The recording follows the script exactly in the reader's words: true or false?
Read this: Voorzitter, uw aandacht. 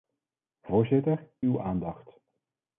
true